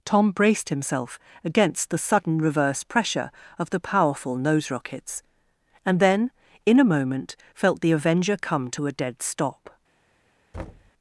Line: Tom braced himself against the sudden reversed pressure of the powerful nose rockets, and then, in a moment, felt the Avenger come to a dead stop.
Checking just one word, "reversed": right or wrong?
wrong